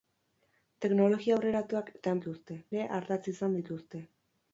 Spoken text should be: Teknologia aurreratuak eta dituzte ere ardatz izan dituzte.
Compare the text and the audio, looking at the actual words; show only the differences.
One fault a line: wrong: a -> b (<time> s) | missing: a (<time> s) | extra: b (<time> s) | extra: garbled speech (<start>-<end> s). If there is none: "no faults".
no faults